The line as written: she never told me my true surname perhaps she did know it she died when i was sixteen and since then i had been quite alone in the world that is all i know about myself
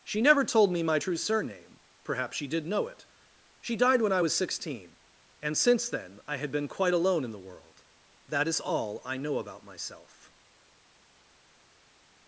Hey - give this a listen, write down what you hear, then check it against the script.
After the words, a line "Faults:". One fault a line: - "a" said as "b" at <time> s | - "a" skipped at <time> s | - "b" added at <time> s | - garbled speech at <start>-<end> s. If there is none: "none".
she never told me my true surname perhaps she did know it she died when i was sixteen and since then i had been quite alone in the world that is all i know about myself
Faults:
none